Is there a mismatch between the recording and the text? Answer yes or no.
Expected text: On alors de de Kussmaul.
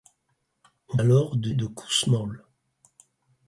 no